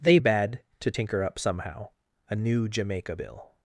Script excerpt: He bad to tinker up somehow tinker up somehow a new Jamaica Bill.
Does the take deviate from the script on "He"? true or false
true